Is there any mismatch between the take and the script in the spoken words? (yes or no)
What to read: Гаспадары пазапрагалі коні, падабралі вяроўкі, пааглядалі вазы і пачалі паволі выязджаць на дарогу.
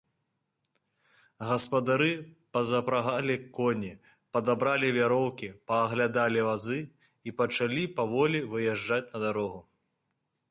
no